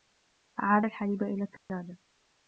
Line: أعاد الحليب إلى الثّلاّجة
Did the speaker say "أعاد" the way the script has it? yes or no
yes